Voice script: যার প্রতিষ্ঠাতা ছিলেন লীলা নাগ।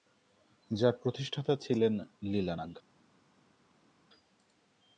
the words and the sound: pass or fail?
pass